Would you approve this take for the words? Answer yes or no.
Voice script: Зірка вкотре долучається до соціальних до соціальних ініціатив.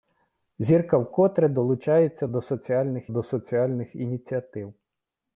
yes